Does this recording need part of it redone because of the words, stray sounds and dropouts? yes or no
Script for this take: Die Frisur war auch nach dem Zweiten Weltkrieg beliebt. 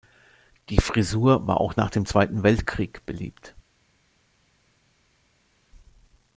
no